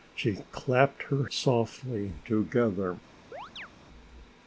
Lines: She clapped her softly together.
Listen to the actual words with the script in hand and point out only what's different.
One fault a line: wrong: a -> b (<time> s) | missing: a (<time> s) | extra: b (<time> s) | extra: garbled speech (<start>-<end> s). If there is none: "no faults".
no faults